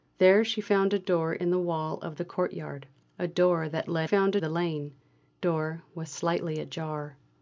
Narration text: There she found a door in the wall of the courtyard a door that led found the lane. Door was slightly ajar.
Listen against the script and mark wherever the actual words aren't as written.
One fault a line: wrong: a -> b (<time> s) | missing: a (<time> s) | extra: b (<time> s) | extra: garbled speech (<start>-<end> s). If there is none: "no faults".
no faults